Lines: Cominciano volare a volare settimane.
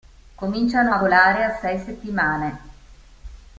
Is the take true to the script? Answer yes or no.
no